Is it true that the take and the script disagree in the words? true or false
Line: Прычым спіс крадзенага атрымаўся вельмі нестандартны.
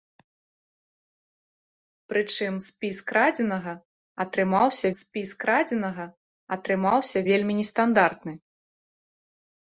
true